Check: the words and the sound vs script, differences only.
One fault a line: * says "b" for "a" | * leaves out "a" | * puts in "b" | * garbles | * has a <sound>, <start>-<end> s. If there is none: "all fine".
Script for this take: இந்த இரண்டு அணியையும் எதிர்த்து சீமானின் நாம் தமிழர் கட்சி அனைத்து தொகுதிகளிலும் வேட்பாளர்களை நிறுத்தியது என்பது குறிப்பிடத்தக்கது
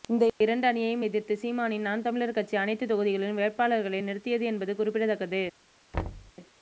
* has a thud, 5.9-6.3 s